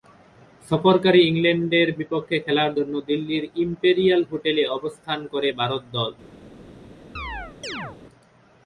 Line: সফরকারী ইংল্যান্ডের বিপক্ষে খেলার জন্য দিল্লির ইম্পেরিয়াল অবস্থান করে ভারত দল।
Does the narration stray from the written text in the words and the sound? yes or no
yes